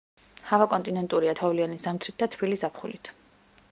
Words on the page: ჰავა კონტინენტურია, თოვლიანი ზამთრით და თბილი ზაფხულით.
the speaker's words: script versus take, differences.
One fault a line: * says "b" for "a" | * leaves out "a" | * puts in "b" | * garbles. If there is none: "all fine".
all fine